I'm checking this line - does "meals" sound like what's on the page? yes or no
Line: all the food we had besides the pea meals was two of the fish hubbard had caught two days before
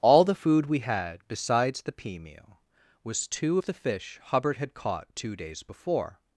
no